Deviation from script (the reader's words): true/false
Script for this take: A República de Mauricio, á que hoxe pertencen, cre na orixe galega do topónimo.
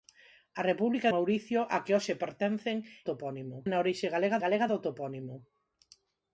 true